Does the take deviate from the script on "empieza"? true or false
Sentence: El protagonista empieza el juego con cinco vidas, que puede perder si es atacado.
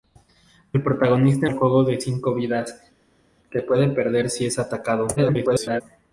true